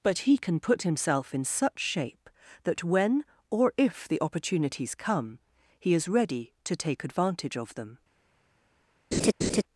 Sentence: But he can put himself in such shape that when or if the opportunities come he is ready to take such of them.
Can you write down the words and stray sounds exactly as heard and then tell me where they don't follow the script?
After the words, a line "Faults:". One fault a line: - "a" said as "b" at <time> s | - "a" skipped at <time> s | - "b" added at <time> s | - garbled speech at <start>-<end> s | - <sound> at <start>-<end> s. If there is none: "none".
But he can put himself in such shape that when or if the opportunities come he is ready to take advantage of them.
Faults:
- "such" said as "advantage" at 7.0 s
- laugh at 9.1-9.6 s